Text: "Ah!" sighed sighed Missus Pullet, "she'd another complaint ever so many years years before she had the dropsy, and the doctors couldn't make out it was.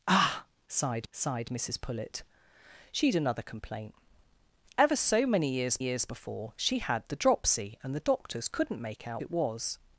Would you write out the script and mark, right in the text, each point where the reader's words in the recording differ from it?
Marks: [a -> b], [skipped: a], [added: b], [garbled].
"Ah!" sighed sighed Missus Pullet, "she'd another complaint ever so many years years before she had the dropsy, and the doctors couldn't make out it was.